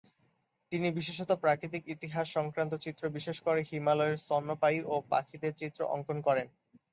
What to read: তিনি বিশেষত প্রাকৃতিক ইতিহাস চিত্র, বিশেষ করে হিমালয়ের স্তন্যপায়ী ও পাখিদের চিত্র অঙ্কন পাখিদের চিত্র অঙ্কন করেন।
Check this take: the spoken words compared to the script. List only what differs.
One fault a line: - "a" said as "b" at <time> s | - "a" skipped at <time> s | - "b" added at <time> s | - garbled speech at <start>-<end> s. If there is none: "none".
- "সংক্রান্ত" added at 2.3 s
- "পাখিদের চিত্র অঙ্কন" skipped at 6.2 s